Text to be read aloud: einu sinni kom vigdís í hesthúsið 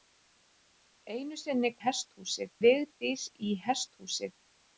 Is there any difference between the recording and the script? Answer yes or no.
yes